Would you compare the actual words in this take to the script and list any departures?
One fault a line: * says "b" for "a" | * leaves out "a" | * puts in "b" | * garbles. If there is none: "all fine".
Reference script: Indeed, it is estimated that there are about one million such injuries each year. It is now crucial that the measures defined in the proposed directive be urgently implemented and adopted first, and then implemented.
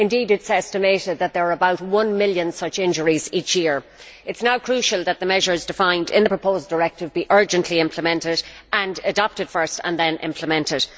all fine